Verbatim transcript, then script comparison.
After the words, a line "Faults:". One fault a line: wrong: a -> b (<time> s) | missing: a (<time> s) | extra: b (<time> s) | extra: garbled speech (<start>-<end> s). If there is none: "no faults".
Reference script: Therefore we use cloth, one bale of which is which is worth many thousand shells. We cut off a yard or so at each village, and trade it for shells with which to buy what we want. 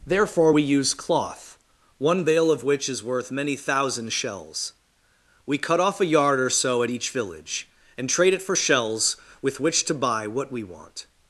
Therefore we use cloth, one bale of which is worth many thousand shells. We cut off a yard or so at each village, and trade it for shells with which to buy what we want.
Faults:
missing: which is (3.0 s)